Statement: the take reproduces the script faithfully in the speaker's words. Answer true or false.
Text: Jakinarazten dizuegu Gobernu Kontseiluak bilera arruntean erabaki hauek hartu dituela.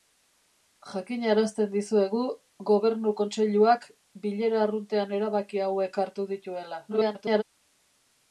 false